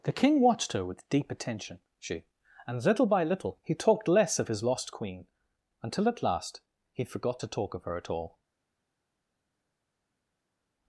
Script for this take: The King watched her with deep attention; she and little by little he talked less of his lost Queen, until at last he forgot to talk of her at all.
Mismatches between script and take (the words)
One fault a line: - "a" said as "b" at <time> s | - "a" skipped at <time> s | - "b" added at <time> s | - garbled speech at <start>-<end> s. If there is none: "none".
none